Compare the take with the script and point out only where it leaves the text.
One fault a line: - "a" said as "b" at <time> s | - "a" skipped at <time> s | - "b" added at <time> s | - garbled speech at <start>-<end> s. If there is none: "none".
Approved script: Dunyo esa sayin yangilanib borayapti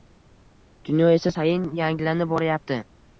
none